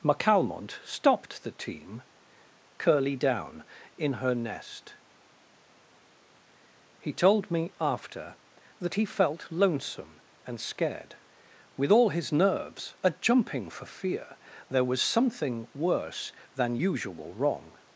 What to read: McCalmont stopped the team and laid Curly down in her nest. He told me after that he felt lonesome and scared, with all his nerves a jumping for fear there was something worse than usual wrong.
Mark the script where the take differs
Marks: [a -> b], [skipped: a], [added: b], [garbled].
McCalmont stopped the team [skipped: and laid] Curly down in her nest. He told me after that he felt lonesome and scared, with all his nerves a jumping for fear there was something worse than usual wrong.